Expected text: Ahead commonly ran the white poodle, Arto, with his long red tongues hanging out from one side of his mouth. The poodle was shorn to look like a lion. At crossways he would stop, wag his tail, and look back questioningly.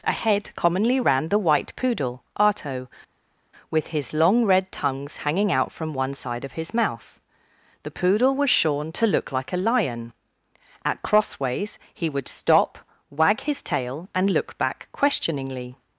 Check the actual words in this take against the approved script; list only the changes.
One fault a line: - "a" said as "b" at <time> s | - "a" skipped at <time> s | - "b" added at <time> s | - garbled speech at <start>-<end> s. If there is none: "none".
none